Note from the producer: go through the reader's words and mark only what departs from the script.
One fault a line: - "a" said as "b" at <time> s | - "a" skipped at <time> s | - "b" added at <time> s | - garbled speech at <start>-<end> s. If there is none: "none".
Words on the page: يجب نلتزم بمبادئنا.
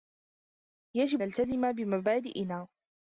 none